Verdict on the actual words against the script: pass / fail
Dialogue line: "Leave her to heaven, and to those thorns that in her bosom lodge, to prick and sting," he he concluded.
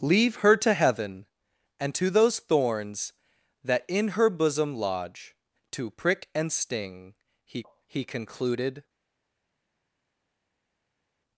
pass